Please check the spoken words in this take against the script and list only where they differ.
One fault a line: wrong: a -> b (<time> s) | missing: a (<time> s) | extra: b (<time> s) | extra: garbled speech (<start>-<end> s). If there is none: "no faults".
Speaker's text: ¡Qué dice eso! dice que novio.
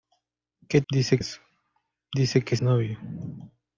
no faults